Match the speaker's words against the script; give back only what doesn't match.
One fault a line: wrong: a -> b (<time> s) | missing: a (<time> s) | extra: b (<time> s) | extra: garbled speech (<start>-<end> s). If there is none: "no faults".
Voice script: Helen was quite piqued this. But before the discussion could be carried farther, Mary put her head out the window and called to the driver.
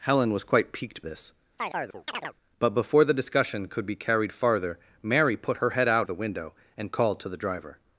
no faults